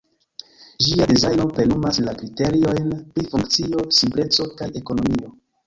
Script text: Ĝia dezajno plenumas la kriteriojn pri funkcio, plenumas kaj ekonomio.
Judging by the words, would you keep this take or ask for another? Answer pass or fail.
fail